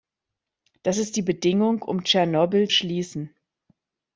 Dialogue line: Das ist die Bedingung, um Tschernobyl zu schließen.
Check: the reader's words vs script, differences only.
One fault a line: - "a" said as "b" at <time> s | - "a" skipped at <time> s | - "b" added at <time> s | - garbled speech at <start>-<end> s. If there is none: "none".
- "zu" skipped at 2.7 s